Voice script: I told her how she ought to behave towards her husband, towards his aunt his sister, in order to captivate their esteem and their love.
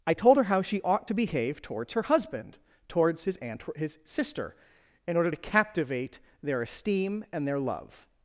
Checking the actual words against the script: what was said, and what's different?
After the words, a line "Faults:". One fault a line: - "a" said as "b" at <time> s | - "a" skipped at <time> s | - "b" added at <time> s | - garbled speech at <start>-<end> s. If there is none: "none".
I told her how she ought to behave towards her husband, towards his aunt his sister, in order to captivate their esteem and their love.
Faults:
none